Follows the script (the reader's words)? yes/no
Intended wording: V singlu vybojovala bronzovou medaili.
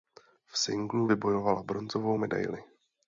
yes